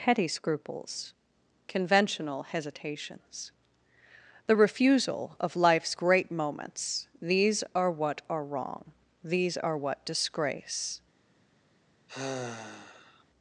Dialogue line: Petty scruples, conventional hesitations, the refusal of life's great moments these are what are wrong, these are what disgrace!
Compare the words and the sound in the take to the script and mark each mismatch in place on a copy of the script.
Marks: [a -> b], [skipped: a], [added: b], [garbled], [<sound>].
Petty scruples, conventional hesitations, the refusal of life's great moments these are what are wrong, these are what disgrace! [sigh]